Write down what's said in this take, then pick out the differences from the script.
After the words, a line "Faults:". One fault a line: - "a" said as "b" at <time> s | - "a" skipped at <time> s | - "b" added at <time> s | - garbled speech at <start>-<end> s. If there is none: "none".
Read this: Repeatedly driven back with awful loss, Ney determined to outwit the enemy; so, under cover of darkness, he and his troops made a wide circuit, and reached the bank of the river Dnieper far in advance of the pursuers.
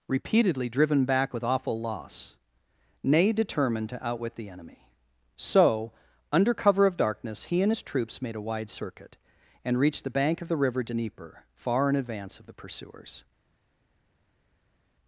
Repeatedly driven back with awful loss, Ney determined to outwit the enemy; so, under cover of darkness, he and his troops made a wide circuit, and reached the bank of the river Dnieper far in advance of the pursuers.
Faults:
none